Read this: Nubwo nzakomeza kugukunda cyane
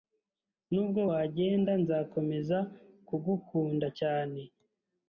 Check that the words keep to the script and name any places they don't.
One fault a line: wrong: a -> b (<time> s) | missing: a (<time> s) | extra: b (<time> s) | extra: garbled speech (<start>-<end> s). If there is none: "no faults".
extra: wagenda (1.1 s)